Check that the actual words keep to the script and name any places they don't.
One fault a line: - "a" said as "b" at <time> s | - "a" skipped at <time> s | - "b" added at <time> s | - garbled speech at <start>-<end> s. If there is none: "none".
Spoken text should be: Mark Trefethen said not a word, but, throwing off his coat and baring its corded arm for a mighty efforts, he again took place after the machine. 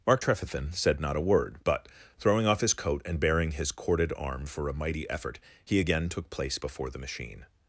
- "its" said as "his" at 3.5 s
- "efforts" said as "effort" at 5.1 s
- "after" said as "before" at 6.6 s